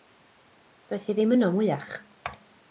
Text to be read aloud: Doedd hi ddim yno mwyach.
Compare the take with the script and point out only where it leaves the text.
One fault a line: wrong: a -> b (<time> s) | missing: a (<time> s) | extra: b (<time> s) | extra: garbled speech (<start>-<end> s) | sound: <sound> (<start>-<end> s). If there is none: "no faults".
no faults